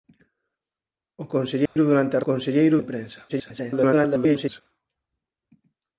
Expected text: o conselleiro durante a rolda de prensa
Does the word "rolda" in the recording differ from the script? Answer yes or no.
yes